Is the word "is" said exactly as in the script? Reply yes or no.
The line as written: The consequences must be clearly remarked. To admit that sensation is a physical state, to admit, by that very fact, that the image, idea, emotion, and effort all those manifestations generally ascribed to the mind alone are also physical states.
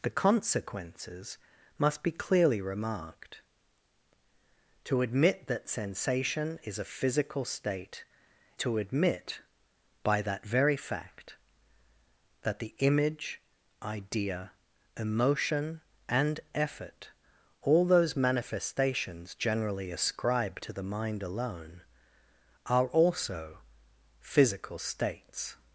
yes